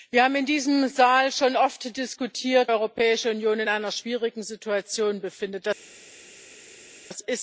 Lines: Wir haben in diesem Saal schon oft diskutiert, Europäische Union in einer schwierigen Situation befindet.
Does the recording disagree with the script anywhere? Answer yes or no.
no